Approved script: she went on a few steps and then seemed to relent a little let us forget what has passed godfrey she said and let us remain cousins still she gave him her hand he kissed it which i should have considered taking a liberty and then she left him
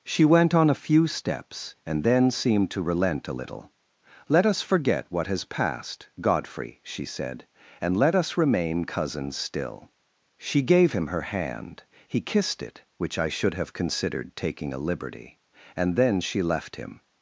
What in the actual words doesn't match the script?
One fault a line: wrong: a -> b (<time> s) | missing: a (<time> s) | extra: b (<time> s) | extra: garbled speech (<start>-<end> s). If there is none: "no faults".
no faults